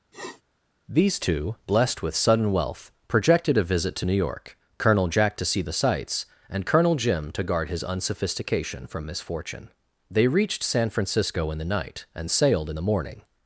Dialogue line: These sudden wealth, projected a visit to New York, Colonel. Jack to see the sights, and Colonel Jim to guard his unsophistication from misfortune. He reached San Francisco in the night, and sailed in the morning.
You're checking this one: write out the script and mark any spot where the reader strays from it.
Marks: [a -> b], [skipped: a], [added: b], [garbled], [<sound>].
[sniff] These [added: two blessed with] sudden wealth, projected a visit to New York, Colonel. Jack to see the sights, and Colonel Jim to guard his unsophistication from misfortune. [He -> They] reached San Francisco in the night, and sailed in the morning.